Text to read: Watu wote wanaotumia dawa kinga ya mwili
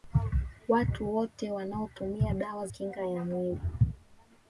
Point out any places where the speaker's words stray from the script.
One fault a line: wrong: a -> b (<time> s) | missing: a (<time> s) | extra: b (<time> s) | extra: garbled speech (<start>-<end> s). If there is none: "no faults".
no faults